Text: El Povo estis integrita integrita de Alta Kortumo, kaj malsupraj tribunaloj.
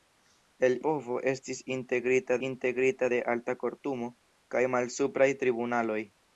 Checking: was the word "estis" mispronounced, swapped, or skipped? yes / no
no